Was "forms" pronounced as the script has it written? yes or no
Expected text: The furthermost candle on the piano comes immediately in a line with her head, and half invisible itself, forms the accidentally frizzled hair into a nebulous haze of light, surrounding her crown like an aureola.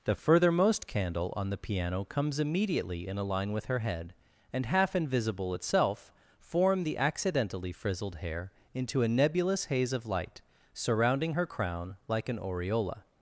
no